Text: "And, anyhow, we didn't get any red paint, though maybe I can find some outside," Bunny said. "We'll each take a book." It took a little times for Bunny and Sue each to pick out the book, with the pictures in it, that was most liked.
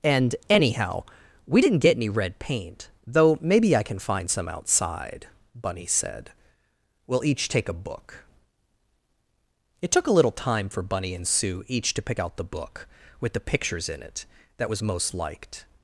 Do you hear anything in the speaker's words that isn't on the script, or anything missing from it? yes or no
yes